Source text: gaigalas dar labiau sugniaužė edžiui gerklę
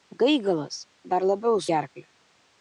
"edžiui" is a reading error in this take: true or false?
true